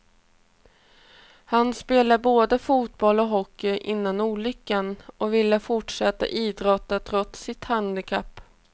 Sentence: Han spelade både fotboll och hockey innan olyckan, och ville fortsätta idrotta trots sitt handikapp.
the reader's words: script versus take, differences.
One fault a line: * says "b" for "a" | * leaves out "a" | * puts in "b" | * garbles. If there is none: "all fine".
all fine